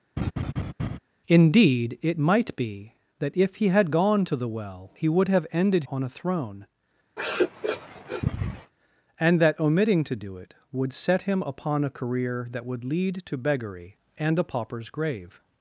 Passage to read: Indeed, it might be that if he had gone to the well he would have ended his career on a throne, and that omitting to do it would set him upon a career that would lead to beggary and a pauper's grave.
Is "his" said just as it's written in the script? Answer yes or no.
no